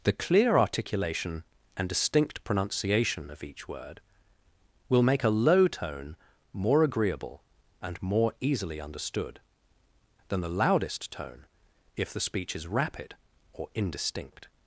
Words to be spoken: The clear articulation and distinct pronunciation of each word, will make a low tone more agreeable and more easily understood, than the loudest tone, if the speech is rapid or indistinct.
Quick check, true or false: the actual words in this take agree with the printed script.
true